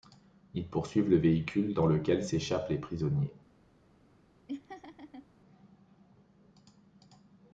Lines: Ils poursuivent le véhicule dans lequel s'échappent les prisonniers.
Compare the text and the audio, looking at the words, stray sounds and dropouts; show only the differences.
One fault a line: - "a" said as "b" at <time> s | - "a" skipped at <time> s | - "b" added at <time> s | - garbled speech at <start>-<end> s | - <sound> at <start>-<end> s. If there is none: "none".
- laugh at 4.5-5.3 s